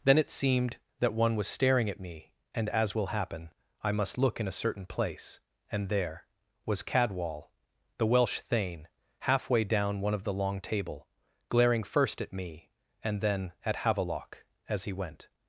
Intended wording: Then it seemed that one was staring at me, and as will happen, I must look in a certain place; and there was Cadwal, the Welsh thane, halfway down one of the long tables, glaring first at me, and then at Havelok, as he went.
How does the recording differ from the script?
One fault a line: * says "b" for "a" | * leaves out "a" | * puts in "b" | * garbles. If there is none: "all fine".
* says "table" for "tables"